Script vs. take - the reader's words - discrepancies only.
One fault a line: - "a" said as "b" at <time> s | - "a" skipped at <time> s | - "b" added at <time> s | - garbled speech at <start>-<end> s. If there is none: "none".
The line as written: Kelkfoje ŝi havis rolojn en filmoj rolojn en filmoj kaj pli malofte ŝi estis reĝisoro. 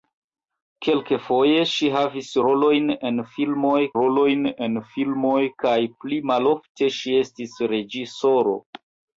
none